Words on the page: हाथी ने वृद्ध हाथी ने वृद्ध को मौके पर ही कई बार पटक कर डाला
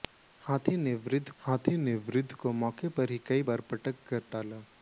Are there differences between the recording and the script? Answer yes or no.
no